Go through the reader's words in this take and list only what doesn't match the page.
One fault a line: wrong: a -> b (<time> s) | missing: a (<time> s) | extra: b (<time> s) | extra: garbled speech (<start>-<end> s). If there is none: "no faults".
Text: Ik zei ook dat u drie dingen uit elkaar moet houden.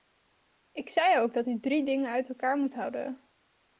no faults